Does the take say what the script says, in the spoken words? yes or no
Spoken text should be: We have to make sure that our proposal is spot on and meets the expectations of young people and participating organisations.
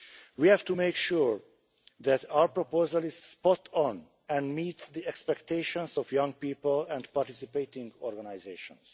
yes